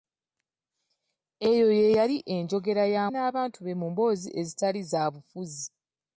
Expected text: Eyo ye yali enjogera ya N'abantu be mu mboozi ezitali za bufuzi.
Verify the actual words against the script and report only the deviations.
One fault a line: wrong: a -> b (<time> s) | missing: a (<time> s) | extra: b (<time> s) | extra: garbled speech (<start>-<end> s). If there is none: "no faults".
no faults